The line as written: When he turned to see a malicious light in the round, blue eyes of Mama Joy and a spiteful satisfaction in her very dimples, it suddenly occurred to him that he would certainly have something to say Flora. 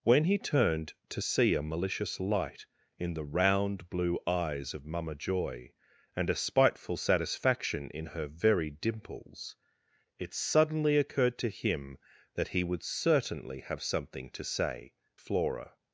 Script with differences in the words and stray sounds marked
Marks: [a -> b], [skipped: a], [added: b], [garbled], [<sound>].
When he turned to see a malicious light in the round, blue eyes of Mama Joy and a spiteful satisfaction in her very dimples, it suddenly occurred to him that he would certainly have something to say Flora.